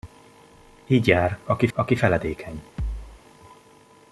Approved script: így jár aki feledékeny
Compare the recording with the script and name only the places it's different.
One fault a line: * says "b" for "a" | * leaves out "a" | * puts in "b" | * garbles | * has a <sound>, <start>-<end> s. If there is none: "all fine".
* puts in "aki"
* has a thud, 2.8-3.2 s